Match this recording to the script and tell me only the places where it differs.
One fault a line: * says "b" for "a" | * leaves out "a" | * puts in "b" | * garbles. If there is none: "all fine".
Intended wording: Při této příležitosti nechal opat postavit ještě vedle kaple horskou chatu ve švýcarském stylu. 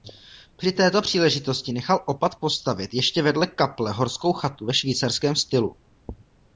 all fine